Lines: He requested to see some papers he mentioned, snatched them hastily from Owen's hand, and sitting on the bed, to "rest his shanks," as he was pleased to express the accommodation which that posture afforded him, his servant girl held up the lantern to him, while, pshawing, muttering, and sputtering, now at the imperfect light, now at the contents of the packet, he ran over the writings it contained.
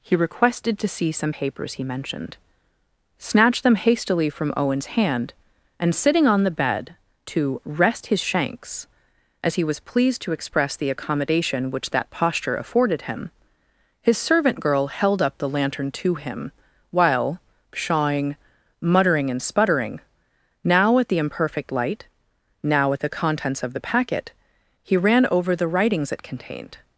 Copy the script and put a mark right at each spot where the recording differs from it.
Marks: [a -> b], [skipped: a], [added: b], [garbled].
He requested to see some papers he mentioned, snatched them hastily from Owen's hand, and sitting on the bed, to "rest his shanks," as he was pleased to express the accommodation which that posture afforded him, his servant girl held up the lantern to him, while, pshawing, muttering, and sputtering, now at the imperfect light, now at the contents of the packet, he ran over the writings it contained.